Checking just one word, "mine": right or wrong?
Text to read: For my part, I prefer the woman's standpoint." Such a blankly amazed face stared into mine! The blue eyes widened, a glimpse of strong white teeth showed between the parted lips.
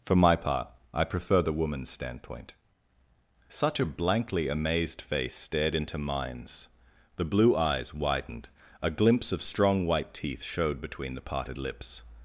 wrong